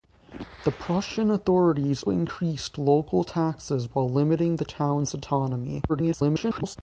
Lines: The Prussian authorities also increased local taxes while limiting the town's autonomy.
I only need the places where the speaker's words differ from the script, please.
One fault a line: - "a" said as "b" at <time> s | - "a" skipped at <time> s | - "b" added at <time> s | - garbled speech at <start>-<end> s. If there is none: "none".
- "also" skipped at 2.0 s
- garbled speech at 5.9-6.8 s